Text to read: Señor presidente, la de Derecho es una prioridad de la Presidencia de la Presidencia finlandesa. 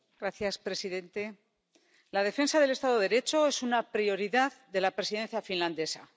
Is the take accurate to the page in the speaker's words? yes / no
no